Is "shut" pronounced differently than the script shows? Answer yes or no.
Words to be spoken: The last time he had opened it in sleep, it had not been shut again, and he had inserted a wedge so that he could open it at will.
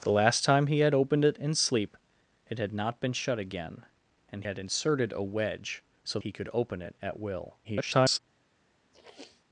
no